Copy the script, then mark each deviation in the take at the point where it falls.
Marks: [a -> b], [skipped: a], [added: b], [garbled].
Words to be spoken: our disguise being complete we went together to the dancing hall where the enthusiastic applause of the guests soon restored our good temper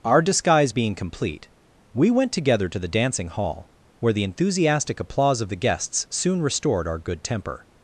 our disguise being complete we went together to the dancing hall where the enthusiastic applause of the guests soon restored our good temper